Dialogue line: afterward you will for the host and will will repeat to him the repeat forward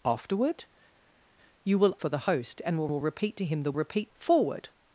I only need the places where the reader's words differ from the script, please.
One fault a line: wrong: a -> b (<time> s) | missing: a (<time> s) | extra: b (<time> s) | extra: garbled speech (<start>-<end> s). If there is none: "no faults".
no faults